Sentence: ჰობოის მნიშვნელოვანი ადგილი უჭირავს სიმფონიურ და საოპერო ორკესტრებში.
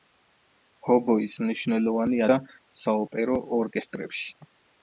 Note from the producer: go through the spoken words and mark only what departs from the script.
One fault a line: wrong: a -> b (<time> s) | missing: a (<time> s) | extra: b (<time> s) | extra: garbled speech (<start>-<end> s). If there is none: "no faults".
missing: ადგილი უჭირავს სიმფონიურ (2.2 s)